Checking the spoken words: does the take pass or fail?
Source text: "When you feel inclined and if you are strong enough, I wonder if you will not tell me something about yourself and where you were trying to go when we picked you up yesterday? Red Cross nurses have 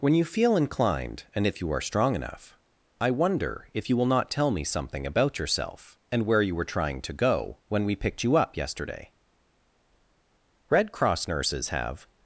pass